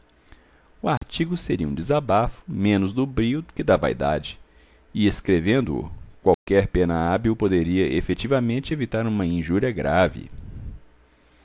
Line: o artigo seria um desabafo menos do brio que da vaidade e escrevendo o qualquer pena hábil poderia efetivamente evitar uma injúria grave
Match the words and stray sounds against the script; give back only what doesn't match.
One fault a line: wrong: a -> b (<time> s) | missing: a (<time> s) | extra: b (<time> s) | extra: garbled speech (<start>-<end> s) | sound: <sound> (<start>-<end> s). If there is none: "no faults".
sound: dropout (1.0-1.0 s)
sound: dropout (6.3-6.5 s)